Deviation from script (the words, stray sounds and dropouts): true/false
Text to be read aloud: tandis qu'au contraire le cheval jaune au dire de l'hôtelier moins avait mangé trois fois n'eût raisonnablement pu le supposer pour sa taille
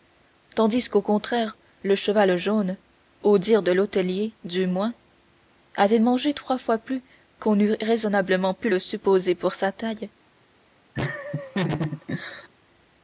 true